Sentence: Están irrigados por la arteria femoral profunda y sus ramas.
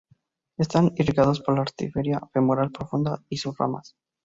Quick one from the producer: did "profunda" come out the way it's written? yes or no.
yes